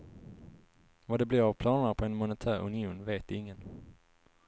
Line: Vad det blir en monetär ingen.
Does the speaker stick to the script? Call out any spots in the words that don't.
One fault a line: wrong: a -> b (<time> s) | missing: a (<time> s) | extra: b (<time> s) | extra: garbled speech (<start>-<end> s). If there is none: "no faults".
extra: av planerna på (1.4 s)
extra: union vet (2.6 s)